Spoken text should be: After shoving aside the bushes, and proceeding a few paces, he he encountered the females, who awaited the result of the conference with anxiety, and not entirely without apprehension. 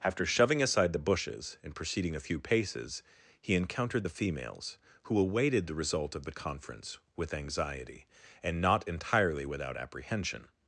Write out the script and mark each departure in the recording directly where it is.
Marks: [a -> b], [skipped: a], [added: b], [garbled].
After shoving aside the bushes, and proceeding a few paces, he [skipped: he] encountered the females, who awaited the result of the conference with anxiety, and not entirely without apprehension.